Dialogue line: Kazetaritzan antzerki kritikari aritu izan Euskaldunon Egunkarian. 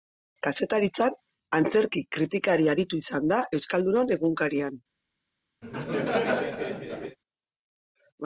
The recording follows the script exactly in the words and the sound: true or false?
false